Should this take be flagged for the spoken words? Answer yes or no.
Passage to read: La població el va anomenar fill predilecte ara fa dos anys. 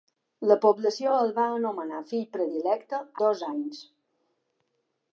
yes